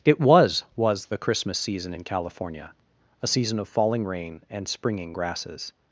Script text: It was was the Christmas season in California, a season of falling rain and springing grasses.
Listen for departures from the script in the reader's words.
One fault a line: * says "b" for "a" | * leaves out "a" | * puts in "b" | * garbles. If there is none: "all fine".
all fine